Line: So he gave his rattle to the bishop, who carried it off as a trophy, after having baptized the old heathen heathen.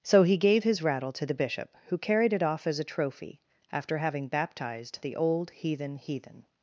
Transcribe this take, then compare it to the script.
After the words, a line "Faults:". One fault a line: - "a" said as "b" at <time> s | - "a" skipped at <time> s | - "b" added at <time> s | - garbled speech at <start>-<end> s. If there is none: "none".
So he gave his rattle to the bishop, who carried it off as a trophy, after having baptized the old heathen heathen.
Faults:
none